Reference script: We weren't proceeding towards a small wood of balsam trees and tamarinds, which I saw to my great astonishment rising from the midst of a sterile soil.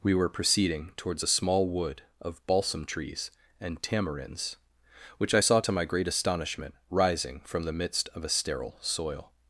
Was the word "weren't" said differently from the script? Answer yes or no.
yes